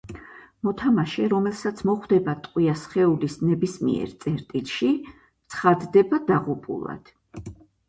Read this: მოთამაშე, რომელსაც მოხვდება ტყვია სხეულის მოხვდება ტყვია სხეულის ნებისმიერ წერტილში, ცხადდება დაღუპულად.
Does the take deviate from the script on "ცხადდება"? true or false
false